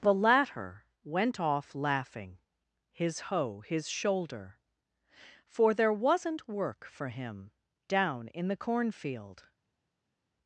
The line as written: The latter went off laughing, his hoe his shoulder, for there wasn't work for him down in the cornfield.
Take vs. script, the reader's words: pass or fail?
pass